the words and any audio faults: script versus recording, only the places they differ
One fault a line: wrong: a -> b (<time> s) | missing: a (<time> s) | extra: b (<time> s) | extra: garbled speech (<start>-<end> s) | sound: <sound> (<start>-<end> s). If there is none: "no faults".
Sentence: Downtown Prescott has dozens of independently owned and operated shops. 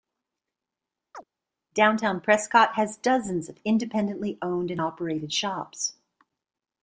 sound: chirp (1.1-1.2 s)